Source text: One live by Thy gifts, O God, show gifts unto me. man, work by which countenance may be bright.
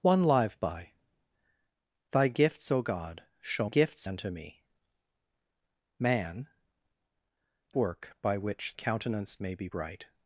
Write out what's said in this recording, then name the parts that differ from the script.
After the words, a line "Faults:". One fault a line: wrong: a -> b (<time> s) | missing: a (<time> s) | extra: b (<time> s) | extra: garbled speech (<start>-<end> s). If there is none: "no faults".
One live by Thy gifts, O God, show gifts unto me. man, work by which countenance may be bright.
Faults:
no faults